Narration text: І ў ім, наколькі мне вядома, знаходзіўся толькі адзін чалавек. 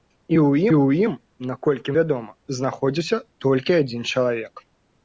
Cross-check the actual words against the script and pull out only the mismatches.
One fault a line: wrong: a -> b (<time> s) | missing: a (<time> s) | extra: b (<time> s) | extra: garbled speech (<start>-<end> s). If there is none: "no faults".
extra: ў (0.7 s)
missing: мне (2.0 s)